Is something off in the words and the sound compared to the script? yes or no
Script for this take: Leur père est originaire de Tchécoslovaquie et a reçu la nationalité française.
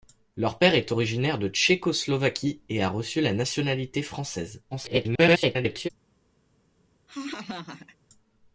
yes